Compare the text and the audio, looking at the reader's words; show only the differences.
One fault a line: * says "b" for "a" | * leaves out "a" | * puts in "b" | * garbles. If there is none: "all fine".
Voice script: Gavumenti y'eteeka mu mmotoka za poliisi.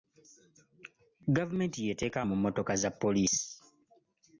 all fine